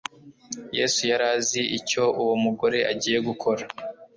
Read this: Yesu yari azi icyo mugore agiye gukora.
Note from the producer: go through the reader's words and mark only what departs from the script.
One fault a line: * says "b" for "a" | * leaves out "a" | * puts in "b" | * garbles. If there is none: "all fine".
* puts in "uwo"